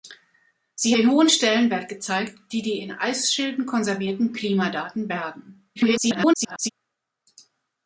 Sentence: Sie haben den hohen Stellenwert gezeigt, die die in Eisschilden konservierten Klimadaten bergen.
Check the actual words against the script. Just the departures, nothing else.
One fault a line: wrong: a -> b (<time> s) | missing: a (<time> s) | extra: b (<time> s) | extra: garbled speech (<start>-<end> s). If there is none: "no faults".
missing: haben (1.0 s)
extra: garbled speech (5.8-6.7 s)